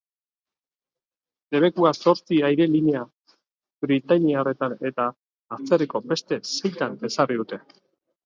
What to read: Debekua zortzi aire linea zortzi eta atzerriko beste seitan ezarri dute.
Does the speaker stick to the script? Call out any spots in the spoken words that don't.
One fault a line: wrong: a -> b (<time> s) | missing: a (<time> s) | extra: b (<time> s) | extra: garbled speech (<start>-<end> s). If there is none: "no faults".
wrong: zortzi -> britainiarretan (3.9 s)